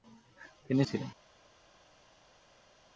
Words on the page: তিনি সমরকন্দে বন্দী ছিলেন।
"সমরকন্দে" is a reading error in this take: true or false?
true